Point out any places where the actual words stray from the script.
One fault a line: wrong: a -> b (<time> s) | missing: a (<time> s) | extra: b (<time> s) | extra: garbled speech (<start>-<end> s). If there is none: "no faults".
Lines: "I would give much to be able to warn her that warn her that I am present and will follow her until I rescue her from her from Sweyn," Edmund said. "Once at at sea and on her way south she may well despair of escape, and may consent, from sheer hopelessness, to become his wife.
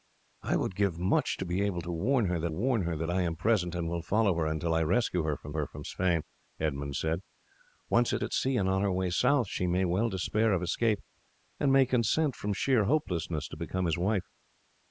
no faults